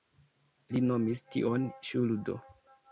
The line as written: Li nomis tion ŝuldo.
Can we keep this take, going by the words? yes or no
yes